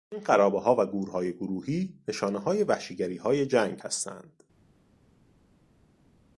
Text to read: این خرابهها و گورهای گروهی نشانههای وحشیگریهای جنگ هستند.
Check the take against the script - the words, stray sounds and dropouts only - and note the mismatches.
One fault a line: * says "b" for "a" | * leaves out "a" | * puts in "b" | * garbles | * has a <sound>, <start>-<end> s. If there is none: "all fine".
all fine